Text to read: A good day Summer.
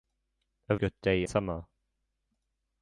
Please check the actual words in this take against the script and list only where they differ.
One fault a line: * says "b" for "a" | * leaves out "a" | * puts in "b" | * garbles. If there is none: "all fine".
all fine